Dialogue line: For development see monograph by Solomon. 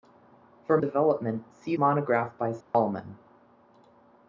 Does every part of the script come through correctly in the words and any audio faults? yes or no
no